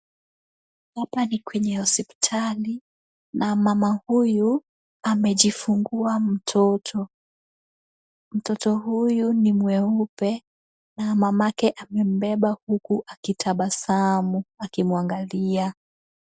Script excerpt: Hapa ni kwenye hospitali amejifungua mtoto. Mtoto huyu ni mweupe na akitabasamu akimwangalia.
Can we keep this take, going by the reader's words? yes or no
no